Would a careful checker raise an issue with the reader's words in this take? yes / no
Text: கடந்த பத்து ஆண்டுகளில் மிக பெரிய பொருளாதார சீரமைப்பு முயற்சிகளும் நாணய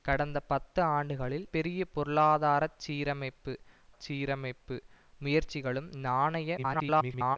yes